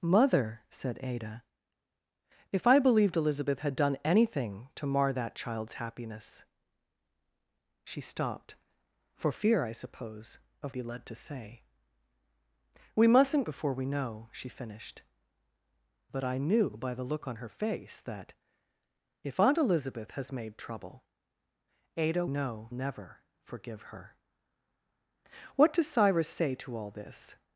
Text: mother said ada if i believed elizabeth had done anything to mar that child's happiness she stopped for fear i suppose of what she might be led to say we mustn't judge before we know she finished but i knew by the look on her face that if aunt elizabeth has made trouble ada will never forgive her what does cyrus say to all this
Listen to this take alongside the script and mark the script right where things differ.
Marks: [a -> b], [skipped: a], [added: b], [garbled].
mother said ada if i believed elizabeth had done anything to mar that child's happiness she stopped for fear i suppose of [skipped: what she might] be led to say we mustn't [skipped: judge] before we know she finished but i knew by the look on her face that if aunt elizabeth has made trouble ada [will -> know] never forgive her what does cyrus say to all this